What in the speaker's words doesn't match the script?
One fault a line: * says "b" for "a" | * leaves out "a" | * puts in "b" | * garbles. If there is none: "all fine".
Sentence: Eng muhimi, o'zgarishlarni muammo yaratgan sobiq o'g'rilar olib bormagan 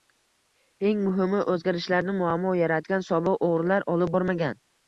all fine